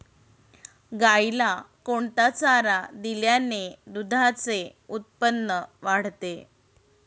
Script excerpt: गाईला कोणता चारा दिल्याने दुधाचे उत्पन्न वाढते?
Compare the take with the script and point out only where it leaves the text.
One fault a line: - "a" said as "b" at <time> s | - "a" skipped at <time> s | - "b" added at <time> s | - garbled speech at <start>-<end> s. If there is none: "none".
none